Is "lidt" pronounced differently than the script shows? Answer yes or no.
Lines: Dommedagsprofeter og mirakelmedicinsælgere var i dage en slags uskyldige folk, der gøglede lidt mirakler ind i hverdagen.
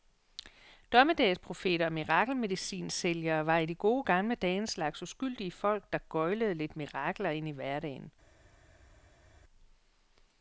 no